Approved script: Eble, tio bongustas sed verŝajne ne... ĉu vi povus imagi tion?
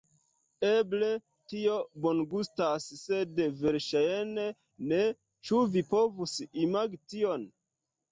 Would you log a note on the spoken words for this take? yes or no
no